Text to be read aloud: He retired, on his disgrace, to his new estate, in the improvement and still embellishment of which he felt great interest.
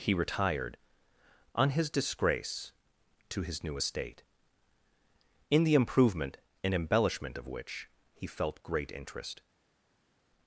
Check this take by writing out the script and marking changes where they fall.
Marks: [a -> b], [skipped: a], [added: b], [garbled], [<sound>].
He retired, on his disgrace, to his new estate, in the improvement and [skipped: still] embellishment of which he felt great interest.